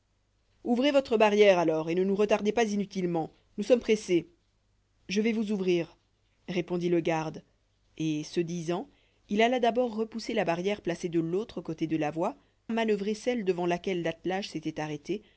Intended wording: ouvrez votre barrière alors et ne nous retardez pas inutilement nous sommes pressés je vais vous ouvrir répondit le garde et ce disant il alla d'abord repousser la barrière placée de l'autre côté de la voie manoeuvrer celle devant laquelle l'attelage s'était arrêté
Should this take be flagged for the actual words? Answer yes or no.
no